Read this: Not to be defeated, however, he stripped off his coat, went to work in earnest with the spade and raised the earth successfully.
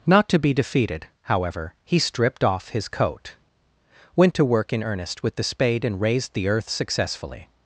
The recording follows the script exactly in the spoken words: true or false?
true